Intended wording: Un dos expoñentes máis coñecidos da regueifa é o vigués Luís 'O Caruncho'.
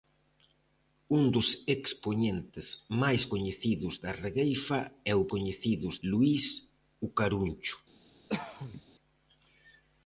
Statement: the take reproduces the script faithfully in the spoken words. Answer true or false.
false